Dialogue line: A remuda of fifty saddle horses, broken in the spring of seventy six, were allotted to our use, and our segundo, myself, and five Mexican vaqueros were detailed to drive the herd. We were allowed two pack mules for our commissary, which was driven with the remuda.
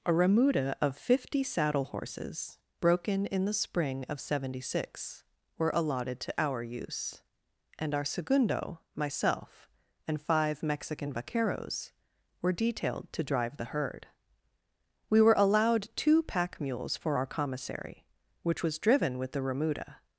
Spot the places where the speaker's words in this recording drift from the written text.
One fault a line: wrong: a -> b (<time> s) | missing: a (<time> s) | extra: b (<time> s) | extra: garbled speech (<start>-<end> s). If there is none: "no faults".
no faults